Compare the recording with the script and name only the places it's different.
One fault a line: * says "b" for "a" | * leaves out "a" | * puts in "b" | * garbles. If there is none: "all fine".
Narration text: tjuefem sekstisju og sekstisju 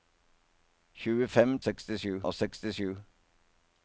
all fine